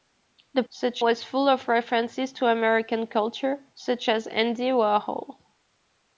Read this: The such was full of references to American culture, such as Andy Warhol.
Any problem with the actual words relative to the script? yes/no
no